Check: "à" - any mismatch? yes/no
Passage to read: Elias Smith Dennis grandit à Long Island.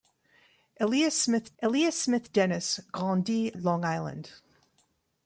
yes